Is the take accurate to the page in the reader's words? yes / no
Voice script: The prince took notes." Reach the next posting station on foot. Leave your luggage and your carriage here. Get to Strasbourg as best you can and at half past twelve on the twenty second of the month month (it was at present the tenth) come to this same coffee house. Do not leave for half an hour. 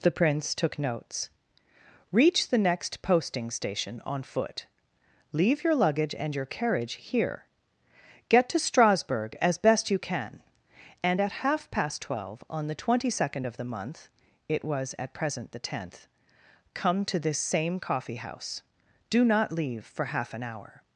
no